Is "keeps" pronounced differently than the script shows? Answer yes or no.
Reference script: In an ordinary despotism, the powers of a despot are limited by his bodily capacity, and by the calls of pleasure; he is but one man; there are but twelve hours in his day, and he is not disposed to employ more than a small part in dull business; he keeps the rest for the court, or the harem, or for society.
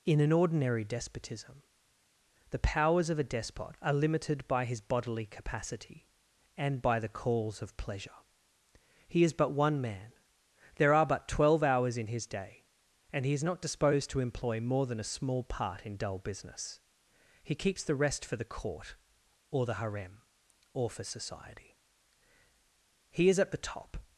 no